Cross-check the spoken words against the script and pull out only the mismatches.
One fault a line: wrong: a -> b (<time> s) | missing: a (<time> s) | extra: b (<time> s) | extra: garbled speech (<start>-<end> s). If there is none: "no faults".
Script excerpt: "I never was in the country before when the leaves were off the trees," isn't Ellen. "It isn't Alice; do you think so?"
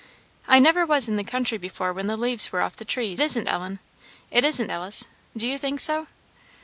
no faults